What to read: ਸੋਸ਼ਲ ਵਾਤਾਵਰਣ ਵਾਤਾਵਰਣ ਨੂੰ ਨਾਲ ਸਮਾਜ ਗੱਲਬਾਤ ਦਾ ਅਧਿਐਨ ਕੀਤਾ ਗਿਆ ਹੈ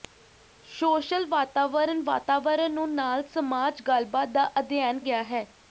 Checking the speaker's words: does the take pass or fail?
fail